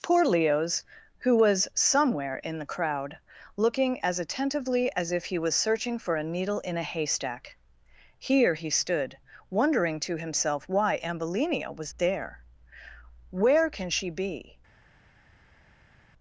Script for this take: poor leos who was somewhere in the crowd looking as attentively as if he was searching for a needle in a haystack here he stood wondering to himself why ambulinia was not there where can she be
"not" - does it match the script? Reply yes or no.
no